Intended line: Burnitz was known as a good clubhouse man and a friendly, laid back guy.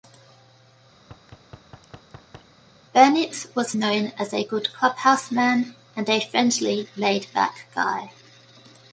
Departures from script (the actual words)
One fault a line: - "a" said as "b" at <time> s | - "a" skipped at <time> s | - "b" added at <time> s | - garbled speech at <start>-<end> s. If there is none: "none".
none